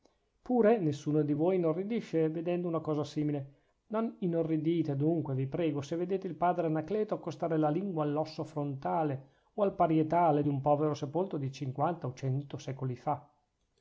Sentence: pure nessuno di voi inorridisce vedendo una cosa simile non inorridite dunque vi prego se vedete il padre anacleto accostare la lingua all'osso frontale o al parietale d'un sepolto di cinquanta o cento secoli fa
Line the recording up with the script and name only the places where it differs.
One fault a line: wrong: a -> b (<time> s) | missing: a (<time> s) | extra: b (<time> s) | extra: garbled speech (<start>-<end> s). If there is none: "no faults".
extra: povero (10.6 s)